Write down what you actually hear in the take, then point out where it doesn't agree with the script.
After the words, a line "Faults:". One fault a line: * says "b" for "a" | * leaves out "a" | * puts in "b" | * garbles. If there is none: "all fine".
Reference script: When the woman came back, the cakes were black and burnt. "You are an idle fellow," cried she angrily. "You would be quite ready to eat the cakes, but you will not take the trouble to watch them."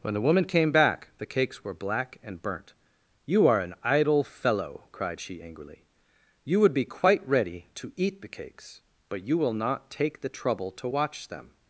When the woman came back, the cakes were black and burnt. "You are an idle fellow," cried she angrily. "You would be quite ready to eat the cakes, but you will not take the trouble to watch them."
Faults:
all fine